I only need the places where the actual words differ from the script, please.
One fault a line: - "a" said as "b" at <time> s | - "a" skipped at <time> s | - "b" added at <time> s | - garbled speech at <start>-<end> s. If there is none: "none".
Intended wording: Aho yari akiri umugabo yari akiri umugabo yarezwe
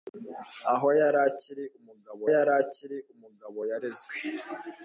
none